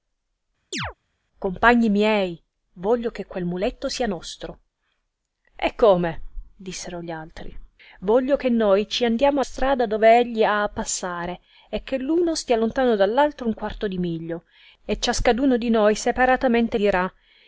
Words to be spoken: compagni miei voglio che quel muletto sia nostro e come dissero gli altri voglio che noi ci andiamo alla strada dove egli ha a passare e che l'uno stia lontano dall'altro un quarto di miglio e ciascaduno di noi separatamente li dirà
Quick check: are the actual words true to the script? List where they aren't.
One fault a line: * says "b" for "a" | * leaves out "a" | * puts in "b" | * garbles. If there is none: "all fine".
* leaves out "alla"
* leaves out "li"